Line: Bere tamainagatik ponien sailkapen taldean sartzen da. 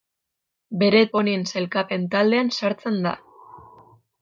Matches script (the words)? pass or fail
fail